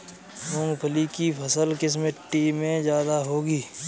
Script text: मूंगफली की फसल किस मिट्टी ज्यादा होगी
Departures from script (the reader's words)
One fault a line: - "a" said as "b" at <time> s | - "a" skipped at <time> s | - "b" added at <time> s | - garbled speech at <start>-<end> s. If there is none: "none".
- "में" added at 2.5 s